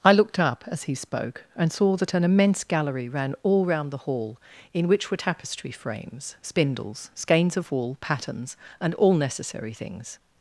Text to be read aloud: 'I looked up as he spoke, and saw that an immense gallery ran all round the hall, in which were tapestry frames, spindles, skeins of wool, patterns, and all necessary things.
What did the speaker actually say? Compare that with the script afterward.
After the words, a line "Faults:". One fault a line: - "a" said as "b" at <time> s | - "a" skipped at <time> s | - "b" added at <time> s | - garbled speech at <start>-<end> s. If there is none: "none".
'I looked up as he spoke, and saw that an immense gallery ran all round the hall, in which were tapestry frames, spindles, skeins of wool, patterns, and all necessary things.
Faults:
none